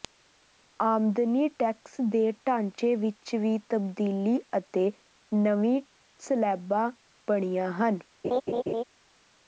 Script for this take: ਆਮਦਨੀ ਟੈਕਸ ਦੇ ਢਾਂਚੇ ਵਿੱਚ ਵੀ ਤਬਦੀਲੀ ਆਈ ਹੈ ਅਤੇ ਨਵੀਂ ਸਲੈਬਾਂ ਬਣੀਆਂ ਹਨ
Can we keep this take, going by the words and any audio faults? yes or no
no